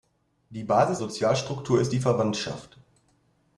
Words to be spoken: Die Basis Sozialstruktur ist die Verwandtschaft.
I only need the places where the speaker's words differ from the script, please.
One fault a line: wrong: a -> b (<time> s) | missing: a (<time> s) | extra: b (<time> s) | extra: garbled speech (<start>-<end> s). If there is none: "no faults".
no faults